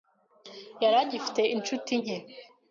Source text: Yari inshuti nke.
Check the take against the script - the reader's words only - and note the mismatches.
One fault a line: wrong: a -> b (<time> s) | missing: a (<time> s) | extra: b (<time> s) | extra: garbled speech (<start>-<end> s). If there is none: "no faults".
extra: agifite (1.0 s)